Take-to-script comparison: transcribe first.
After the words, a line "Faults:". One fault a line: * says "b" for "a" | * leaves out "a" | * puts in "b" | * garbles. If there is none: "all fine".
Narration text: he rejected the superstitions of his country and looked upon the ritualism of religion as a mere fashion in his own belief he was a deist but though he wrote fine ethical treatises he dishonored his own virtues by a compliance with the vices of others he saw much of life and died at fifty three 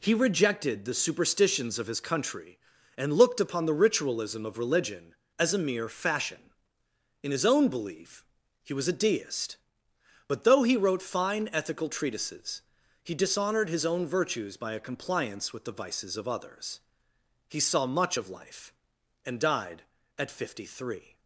he rejected the superstitions of his country and looked upon the ritualism of religion as a mere fashion in his own belief he was a deist but though he wrote fine ethical treatises he dishonored his own virtues by a compliance with the vices of others he saw much of life and died at fifty three
Faults:
all fine